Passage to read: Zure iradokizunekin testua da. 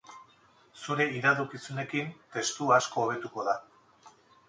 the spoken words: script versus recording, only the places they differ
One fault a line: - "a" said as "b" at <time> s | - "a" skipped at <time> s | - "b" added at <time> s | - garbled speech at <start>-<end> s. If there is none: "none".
- "asko hobetuko" added at 2.8 s